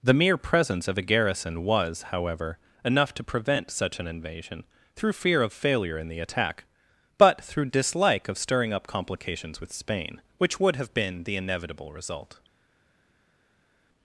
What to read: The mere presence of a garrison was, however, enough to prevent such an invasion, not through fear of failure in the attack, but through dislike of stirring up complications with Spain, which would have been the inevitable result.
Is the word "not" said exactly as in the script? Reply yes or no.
no